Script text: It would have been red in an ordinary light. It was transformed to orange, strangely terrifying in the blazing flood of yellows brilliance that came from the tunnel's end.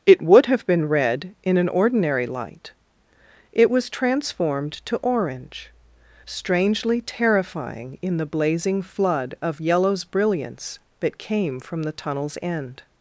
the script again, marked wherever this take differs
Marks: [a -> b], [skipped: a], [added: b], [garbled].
It would have been red in an ordinary light. It was transformed to orange, strangely terrifying in the blazing flood of yellows brilliance that came from the tunnel's end.